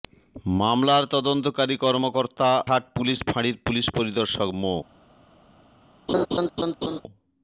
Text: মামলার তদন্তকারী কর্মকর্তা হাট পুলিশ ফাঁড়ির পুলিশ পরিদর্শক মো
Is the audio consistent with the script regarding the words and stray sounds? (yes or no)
no